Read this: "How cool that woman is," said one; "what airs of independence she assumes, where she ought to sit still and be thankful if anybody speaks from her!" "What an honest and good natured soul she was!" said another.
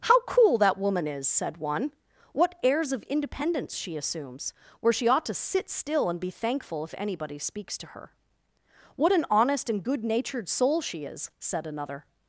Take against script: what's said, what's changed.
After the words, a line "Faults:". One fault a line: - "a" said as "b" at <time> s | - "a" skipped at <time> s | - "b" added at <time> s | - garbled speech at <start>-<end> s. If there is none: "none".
"How cool that woman is," said one; "what airs of independence she assumes, where she ought to sit still and be thankful if anybody speaks to her!" "What an honest and good natured soul she is!" said another.
Faults:
- "from" said as "to" at 7.8 s
- "was" said as "is" at 11.0 s